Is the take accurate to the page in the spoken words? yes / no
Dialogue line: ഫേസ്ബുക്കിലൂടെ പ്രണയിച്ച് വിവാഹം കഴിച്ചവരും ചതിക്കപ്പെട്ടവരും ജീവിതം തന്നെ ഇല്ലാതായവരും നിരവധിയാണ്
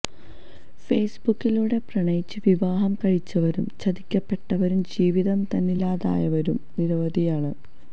yes